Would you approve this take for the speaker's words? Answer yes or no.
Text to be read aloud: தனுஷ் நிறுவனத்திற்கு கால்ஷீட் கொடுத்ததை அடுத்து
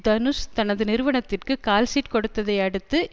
no